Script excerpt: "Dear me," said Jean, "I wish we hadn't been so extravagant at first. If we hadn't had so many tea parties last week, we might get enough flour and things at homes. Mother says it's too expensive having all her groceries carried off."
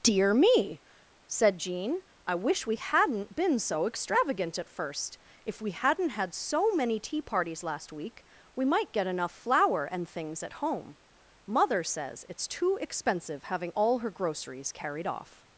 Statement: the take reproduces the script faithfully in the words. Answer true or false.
false